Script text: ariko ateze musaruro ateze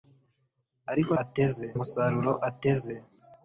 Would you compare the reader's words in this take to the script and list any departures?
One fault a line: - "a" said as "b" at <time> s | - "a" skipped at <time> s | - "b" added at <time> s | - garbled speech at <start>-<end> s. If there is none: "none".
none